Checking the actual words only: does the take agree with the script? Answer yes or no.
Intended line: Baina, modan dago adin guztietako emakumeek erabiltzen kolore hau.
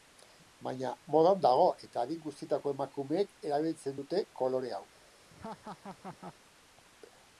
no